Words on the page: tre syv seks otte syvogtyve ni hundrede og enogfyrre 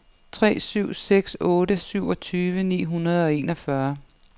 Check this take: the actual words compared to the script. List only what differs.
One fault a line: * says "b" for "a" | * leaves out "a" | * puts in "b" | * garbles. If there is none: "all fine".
all fine